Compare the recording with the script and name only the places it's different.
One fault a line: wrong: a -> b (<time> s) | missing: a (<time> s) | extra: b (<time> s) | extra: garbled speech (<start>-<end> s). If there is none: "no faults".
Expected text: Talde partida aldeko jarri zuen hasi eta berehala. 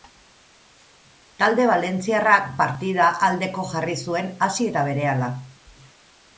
extra: valentziarrak (1.7 s)